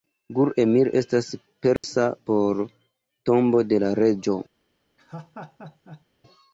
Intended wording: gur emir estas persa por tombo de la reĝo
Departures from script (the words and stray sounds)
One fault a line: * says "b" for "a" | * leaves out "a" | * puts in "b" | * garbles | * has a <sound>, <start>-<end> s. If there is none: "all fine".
* has a dropout, 1.8-1.8 s
* has a laugh, 5.0-6.0 s